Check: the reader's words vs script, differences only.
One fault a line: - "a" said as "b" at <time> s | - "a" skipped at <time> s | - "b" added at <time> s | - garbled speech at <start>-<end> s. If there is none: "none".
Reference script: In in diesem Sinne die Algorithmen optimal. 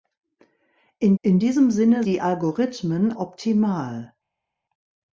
none